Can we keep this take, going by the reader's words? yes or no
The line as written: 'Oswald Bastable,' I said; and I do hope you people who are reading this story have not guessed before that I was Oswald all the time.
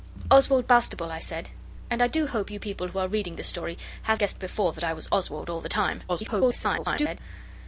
no